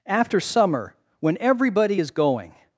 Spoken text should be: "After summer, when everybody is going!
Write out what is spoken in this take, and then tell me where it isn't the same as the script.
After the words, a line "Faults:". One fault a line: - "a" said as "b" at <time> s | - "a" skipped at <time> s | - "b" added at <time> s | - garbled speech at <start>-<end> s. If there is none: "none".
"After summer, when everybody is going!
Faults:
none